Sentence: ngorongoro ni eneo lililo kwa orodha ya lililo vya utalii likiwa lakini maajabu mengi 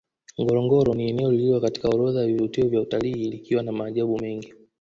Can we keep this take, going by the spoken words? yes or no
no